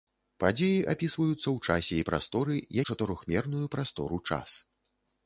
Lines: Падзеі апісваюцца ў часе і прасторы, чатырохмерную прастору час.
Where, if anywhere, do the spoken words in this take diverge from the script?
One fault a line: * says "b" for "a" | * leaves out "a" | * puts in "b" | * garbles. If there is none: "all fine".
all fine